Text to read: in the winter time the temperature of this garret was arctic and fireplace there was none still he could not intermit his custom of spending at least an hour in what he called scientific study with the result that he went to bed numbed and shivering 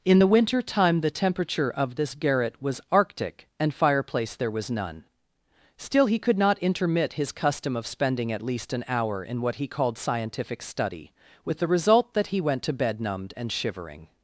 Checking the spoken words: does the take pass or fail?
pass